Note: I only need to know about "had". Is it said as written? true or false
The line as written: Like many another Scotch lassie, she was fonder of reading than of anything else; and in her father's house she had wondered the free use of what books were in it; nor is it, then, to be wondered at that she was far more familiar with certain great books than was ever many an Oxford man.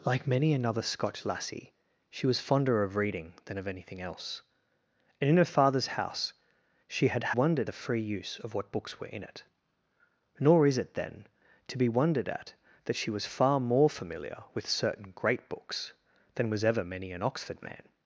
true